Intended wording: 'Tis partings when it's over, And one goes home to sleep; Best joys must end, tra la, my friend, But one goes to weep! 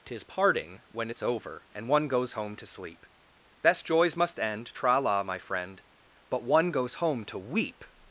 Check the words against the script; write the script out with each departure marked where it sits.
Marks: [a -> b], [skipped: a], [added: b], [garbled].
'Tis [partings -> parting] when it's over, And one goes home to sleep; Best joys must end, tra la, my friend, But one goes [added: home] to weep!